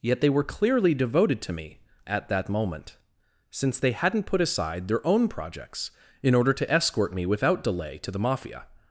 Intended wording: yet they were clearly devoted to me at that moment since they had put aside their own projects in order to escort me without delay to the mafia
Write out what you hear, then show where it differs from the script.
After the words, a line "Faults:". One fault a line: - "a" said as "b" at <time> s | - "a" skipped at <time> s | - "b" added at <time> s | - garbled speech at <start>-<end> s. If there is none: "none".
yet they were clearly devoted to me at that moment since they hadn't put aside their own projects in order to escort me without delay to the mafia
Faults:
- "had" said as "hadn't" at 3.9 s